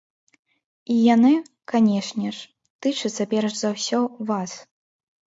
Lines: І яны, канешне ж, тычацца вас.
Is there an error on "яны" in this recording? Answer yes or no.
no